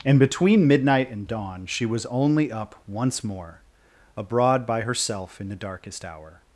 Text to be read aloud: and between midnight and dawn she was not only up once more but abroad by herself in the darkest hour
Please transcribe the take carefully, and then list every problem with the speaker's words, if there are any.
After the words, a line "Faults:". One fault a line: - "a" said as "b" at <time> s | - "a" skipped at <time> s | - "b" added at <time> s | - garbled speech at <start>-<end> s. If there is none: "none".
and between midnight and dawn she was only up once more abroad by herself in the darkest hour
Faults:
- "not" skipped at 2.0 s
- "but" skipped at 3.6 s